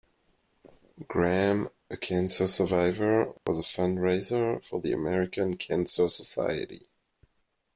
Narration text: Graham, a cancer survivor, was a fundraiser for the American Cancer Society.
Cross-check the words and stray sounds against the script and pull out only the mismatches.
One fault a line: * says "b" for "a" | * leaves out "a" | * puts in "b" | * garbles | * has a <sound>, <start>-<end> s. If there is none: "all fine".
* has a dropout, 3.4-3.5 s